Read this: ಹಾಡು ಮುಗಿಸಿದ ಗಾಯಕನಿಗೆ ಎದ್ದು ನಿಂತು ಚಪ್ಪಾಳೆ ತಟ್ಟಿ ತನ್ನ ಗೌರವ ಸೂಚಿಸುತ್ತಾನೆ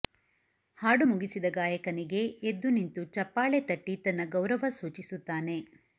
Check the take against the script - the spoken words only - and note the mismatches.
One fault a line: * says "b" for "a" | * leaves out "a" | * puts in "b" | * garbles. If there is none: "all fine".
all fine